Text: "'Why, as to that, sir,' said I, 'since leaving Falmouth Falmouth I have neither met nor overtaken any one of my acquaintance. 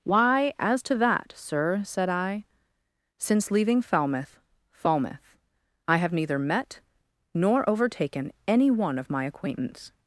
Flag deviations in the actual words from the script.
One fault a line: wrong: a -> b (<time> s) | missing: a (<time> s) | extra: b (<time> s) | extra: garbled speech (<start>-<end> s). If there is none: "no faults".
no faults